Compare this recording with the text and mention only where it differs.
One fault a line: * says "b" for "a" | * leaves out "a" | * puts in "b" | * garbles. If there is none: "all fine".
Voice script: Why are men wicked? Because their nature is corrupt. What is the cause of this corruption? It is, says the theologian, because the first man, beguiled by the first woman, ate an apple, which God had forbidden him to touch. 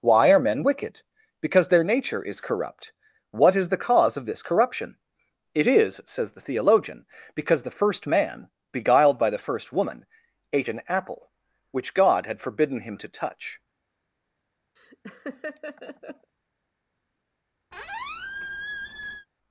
all fine